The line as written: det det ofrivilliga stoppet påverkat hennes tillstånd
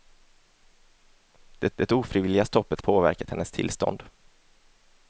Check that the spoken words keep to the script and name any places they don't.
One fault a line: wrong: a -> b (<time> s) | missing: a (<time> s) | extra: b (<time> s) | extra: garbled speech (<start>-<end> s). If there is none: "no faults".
no faults